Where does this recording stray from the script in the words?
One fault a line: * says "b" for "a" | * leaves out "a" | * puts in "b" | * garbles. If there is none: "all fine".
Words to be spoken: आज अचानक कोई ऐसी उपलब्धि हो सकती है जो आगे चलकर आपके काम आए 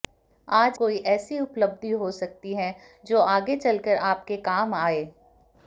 * leaves out "अचानक"